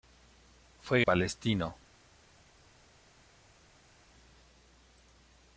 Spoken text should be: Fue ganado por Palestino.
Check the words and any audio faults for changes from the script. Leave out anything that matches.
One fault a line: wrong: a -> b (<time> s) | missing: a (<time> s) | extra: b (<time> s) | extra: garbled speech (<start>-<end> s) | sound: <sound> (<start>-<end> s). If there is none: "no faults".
missing: ganado por (1.0 s)